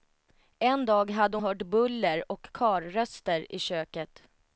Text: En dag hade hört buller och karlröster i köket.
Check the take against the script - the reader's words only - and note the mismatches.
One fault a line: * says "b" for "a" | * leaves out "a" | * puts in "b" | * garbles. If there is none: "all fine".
all fine